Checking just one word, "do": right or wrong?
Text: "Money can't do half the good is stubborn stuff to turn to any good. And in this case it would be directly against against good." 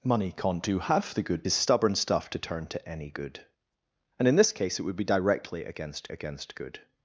right